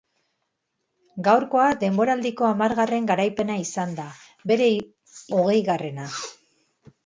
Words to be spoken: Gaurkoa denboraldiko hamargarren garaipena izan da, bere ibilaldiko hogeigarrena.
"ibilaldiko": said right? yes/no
no